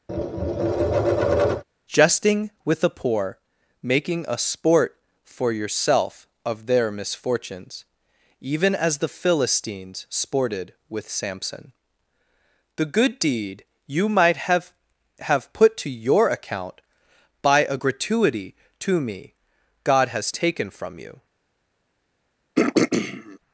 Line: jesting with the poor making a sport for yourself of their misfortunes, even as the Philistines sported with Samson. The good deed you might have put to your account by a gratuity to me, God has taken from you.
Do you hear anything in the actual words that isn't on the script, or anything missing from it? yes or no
yes